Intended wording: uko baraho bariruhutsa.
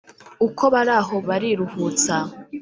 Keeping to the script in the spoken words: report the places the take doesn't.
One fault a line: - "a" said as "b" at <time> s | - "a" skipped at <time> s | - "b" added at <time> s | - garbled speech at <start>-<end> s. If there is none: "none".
none